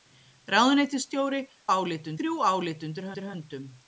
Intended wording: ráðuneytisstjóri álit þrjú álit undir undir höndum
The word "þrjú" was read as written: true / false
true